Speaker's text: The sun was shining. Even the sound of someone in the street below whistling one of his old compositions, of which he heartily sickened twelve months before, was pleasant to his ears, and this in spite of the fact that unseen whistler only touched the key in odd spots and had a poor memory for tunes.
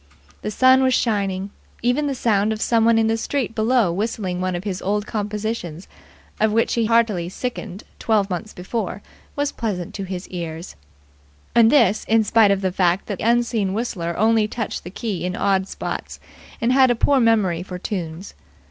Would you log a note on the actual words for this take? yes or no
no